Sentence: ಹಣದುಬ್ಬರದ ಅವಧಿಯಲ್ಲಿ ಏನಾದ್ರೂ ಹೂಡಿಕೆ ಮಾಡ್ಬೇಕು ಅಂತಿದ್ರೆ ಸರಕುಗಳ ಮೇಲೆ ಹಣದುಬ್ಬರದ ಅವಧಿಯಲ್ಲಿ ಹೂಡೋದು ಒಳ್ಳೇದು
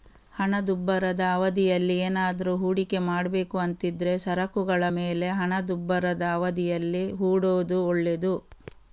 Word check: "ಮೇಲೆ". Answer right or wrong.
right